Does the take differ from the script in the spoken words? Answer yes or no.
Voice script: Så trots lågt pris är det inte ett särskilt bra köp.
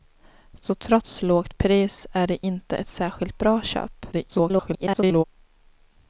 yes